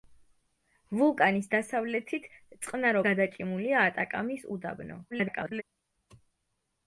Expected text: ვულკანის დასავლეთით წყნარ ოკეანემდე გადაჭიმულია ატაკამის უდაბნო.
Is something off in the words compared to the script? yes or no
yes